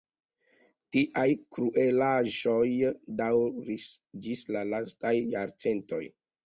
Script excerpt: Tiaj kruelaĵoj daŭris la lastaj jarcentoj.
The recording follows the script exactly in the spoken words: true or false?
false